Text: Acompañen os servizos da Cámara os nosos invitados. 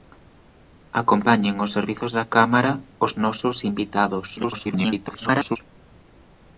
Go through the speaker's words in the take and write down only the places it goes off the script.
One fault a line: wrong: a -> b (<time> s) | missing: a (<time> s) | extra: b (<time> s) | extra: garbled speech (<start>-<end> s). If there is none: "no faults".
extra: garbled speech (4.4-5.6 s)